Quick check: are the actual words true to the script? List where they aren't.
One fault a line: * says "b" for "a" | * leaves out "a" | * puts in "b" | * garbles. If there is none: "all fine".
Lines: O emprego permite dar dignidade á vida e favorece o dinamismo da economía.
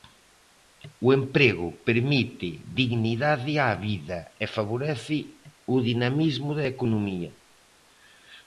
* leaves out "dar"